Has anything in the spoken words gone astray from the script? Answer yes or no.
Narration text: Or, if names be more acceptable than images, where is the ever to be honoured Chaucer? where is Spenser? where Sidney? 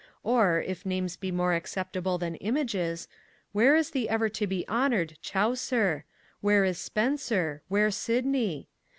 no